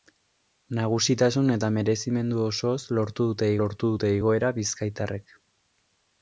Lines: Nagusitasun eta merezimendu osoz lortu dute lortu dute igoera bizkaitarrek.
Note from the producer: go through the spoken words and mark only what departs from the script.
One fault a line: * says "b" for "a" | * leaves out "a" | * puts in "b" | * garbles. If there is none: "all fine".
all fine